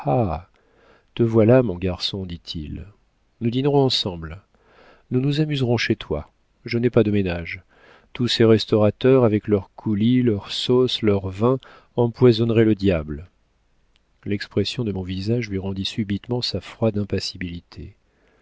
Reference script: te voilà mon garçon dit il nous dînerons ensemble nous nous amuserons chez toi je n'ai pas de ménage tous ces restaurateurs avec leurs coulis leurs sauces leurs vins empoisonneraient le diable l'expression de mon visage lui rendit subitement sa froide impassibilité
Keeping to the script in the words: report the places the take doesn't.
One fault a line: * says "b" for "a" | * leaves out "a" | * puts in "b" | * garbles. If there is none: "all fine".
all fine